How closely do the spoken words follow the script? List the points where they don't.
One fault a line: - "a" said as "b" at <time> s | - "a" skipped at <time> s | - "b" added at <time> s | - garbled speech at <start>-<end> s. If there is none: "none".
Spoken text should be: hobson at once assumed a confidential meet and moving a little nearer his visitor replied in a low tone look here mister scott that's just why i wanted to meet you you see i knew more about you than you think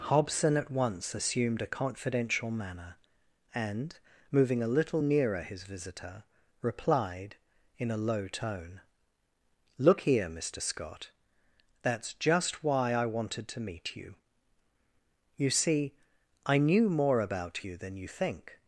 - "meet" said as "manner" at 2.5 s